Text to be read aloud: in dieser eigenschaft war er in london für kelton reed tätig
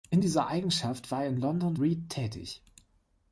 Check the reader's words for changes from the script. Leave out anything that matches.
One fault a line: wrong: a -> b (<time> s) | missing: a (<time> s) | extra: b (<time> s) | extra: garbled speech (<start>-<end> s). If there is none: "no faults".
missing: für kelton (1.8 s)